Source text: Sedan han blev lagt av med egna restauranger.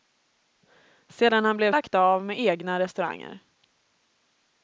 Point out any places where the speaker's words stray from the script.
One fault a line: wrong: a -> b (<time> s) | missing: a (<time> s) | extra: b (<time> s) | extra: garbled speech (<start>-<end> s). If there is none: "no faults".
no faults